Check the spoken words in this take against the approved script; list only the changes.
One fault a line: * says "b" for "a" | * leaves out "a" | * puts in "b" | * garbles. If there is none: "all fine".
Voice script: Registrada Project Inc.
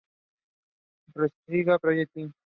all fine